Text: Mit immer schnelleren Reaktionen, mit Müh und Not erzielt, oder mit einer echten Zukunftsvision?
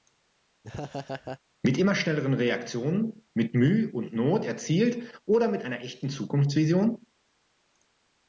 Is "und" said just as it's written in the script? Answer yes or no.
yes